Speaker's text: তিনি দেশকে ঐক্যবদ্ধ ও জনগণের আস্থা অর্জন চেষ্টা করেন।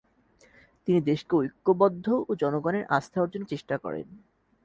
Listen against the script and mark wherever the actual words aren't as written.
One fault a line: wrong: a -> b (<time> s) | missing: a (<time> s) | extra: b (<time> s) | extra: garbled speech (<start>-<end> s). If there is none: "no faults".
no faults